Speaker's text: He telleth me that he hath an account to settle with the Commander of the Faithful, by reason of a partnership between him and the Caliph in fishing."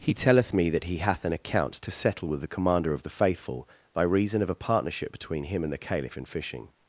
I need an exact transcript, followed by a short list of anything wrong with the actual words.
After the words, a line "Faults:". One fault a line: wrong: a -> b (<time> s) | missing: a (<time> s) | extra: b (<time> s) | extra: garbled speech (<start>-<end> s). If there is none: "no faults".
He telleth me that he hath an account to settle with the Commander of the Faithful, by reason of a partnership between him and the Caliph in fishing."
Faults:
no faults